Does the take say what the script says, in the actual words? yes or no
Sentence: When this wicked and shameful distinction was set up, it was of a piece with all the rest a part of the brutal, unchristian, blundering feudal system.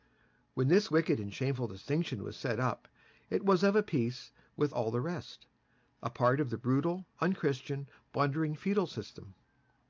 yes